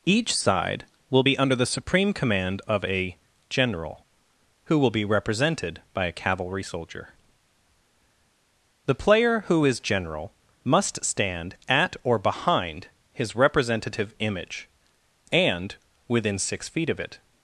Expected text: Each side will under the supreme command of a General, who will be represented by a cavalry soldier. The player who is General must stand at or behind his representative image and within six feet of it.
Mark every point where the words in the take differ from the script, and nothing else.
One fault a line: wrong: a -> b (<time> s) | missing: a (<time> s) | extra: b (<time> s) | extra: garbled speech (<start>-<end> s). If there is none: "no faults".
extra: be (1.2 s)